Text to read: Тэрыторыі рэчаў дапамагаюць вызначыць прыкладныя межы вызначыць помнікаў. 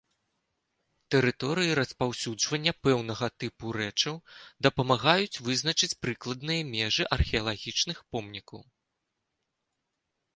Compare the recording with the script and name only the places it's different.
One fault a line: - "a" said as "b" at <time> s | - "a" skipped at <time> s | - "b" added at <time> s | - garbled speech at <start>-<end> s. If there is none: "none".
- "распаўсюджвання пэўнага тыпу" added at 1.8 s
- "вызначыць" said as "археалагічных" at 7.2 s